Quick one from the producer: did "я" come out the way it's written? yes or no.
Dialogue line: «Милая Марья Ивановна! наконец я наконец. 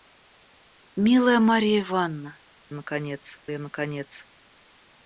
yes